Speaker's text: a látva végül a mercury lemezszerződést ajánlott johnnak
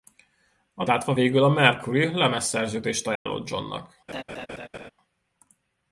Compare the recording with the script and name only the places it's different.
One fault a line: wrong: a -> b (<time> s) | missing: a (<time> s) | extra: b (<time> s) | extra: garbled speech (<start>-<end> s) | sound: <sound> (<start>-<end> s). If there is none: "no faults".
sound: dropout (3.2-3.3 s)
sound: laugh (4.1-4.9 s)